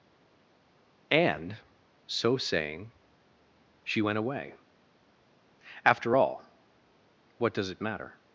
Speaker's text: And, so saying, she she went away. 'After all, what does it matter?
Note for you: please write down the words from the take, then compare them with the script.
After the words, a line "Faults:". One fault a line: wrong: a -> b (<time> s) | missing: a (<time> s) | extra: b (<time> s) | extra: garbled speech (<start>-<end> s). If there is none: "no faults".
And, so saying, she went away. 'After all, what does it matter?
Faults:
missing: she (4.0 s)